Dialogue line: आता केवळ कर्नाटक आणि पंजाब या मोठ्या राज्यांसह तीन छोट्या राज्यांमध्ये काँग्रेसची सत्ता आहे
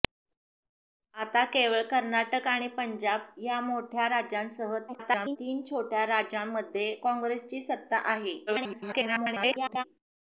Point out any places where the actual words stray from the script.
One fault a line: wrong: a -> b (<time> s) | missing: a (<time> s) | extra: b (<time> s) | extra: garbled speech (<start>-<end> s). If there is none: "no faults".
extra: garbled speech (4.9-5.4 s)
extra: garbled speech (8.5-9.8 s)